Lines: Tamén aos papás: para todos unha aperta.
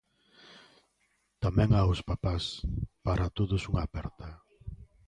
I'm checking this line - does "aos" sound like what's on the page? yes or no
yes